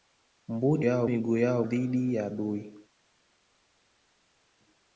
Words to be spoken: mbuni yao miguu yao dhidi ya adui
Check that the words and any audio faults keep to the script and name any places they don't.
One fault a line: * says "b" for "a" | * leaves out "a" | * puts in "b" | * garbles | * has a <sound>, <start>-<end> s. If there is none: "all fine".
all fine